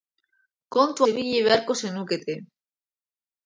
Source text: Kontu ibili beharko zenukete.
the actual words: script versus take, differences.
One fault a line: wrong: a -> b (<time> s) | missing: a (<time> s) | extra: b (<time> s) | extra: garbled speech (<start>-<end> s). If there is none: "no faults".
no faults